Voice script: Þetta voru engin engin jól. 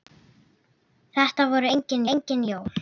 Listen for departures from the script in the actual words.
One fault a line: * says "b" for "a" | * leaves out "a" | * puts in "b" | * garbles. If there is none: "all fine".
all fine